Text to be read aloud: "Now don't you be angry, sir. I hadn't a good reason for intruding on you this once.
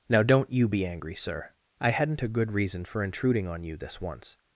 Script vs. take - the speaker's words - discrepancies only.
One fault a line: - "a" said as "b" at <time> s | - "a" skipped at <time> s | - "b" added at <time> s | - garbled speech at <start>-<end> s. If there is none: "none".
none